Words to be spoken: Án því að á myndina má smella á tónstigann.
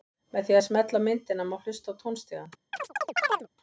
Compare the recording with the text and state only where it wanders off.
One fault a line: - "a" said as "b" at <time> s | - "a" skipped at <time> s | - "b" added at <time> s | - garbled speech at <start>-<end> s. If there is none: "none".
- "Án" said as "Með" at 0.3 s
- "smella" added at 0.7 s
- "smella" said as "hlusta" at 1.7 s